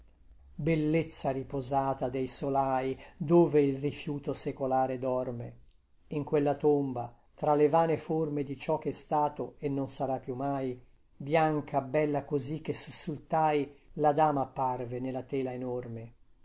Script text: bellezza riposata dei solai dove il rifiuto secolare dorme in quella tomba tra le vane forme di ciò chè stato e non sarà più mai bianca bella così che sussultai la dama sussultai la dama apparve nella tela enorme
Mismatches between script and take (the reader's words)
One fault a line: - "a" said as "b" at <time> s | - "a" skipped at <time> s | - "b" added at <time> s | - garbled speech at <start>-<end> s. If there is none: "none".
- "sussultai la dama" skipped at 14.4 s